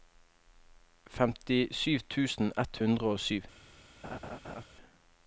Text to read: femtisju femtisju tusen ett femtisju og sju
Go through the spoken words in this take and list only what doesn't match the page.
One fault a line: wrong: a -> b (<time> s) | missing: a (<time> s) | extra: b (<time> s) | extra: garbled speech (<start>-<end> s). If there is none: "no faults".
missing: femtisju (1.9 s)
wrong: femtisju -> hundre (2.8 s)